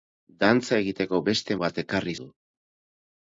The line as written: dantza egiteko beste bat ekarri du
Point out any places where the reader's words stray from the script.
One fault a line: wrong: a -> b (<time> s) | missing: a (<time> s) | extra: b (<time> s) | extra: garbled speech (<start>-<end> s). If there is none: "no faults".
no faults